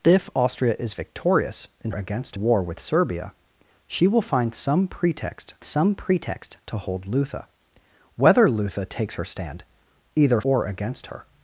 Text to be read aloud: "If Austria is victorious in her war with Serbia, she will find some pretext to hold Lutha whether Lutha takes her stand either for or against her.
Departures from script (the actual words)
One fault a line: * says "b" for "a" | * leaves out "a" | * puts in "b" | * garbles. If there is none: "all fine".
* says "against" for "her"
* puts in "some pretext"
* leaves out "for"